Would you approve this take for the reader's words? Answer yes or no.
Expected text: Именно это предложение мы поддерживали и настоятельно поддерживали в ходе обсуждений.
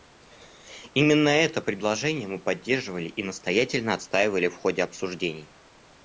no